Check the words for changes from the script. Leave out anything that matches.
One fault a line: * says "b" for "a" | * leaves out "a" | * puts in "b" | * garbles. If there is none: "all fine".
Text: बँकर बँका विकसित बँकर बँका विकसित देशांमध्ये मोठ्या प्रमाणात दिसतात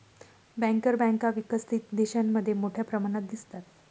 * leaves out "बँकर बँका विकसित"